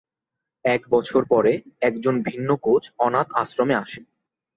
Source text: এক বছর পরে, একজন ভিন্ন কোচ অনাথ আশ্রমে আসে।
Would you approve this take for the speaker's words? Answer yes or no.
yes